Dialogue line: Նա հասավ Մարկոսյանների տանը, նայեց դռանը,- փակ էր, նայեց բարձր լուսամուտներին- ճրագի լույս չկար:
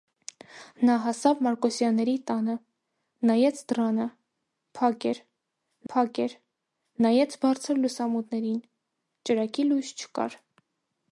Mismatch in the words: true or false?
true